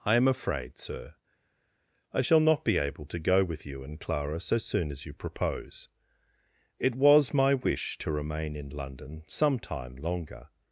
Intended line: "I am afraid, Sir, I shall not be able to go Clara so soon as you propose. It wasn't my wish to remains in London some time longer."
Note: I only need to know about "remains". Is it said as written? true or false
false